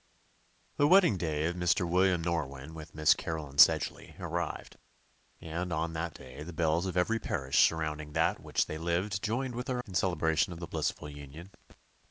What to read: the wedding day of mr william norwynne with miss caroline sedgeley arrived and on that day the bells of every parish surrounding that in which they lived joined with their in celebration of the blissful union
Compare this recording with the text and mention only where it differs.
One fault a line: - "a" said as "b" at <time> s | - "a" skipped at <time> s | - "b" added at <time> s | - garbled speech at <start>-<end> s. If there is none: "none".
none